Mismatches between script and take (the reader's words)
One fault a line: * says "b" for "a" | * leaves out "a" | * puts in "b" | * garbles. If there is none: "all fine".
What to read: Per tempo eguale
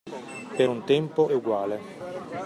* puts in "un"